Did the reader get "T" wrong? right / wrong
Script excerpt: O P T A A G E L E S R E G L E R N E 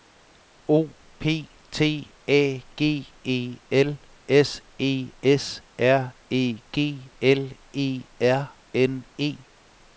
right